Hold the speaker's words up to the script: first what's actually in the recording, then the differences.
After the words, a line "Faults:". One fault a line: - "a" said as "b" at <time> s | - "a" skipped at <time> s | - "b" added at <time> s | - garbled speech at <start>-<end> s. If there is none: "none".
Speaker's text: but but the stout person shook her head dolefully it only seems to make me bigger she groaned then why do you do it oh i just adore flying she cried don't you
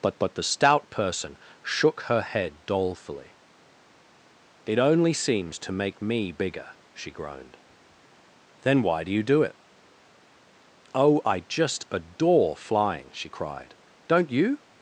but but the stout person shook her head dolefully it only seems to make me bigger she groaned then why do you do it oh i just adore flying she cried don't you
Faults:
none